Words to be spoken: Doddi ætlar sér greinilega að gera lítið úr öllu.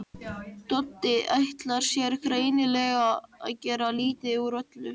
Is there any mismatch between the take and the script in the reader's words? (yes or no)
no